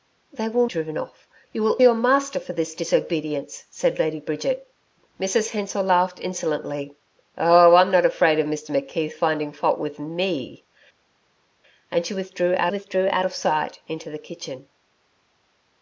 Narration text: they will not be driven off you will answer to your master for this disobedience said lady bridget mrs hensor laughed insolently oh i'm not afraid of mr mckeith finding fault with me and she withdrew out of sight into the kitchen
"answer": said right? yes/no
no